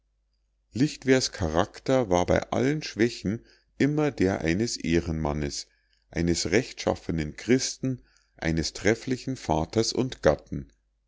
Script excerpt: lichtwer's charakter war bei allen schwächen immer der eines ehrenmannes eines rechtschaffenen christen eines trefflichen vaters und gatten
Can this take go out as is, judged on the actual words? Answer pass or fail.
pass